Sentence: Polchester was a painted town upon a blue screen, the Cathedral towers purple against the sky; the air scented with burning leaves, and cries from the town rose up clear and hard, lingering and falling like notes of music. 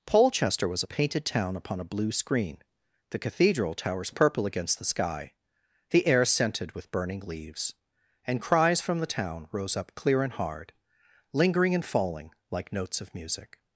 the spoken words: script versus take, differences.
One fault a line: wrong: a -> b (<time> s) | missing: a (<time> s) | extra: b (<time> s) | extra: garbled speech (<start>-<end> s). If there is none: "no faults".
no faults